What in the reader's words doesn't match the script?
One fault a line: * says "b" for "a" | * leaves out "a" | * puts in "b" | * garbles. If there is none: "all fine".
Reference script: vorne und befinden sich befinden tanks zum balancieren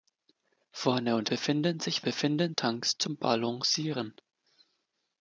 all fine